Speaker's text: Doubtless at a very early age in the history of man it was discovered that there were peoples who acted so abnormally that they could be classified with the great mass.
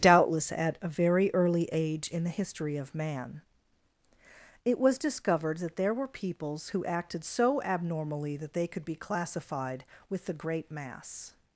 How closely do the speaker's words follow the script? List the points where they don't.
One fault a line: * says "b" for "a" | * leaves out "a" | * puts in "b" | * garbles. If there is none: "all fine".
all fine